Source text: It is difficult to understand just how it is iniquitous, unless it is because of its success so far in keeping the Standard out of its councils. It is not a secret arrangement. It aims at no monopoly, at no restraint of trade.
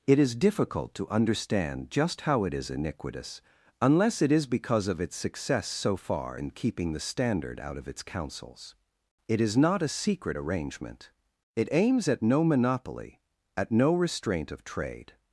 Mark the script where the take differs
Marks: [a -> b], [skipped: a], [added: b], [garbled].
It is difficult to understand just how it is iniquitous, unless it is because of its success so far in keeping the Standard out of its councils. It is not a secret arrangement. It aims at no monopoly, at no restraint of trade.